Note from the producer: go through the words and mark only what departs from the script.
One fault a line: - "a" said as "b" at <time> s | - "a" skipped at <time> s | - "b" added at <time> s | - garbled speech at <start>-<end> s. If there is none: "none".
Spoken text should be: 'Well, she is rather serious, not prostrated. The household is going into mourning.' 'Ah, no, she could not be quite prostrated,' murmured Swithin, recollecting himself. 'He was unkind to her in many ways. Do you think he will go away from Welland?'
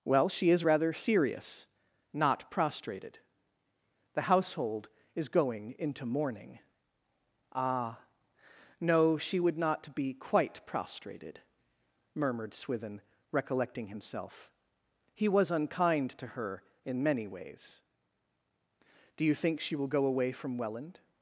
- "could" said as "would" at 9.4 s
- "he" said as "she" at 19.6 s